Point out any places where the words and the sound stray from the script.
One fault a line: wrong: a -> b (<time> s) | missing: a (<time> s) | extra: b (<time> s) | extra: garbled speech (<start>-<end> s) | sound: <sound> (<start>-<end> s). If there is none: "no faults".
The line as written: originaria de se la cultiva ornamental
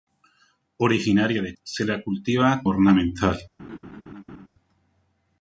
sound: laugh (3.6-4.5 s)